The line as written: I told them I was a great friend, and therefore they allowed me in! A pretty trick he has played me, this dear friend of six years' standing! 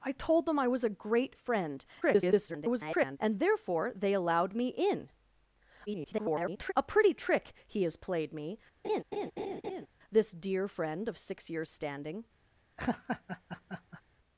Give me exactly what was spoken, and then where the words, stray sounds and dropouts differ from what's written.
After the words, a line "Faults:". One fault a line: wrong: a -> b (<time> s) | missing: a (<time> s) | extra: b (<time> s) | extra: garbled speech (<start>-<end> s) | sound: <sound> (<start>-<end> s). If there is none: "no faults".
I told them I was a great friend, [garbled] and therefore they allowed me in! [garbled] A pretty trick he has played me, this dear friend of six years' standing!
Faults:
extra: garbled speech (2.0-3.2 s)
extra: garbled speech (5.9-6.7 s)
sound: laugh (8.8-9.9 s)
sound: laugh (12.8-14.0 s)